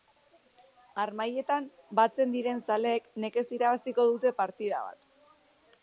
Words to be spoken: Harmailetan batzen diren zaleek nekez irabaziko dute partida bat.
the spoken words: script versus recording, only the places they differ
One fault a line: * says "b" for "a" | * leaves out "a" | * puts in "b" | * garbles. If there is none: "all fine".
all fine